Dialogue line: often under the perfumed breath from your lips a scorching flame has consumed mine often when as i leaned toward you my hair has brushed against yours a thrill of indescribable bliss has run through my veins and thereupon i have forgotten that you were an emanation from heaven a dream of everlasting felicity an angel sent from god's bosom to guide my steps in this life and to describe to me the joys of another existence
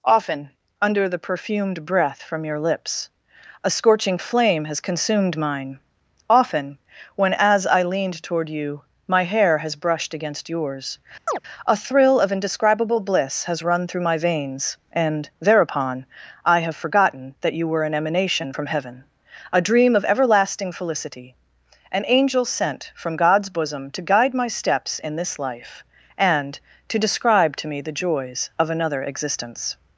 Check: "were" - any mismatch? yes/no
no